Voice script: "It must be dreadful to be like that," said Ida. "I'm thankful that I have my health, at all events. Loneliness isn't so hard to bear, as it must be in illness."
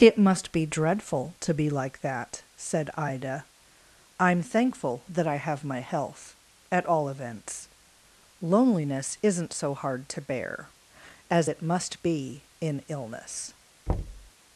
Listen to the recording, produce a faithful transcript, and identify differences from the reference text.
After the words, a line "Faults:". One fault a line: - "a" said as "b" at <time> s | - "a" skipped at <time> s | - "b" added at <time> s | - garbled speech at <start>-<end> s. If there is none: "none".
"It must be dreadful to be like that," said Ida. "I'm thankful that I have my health, at all events. Loneliness isn't so hard to bear, as it must be in illness."
Faults:
none